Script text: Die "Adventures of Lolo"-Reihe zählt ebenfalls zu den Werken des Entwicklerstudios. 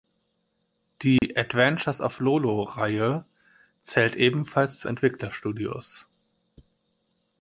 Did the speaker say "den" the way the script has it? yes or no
no